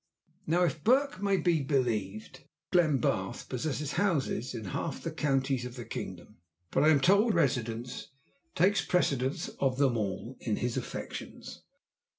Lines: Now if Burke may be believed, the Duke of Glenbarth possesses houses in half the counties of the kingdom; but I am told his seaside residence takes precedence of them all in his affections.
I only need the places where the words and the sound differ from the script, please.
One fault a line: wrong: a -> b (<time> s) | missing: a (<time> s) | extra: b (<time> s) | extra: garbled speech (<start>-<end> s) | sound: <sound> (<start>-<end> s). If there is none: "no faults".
missing: the Duke of (2.5 s)
missing: his seaside (7.3 s)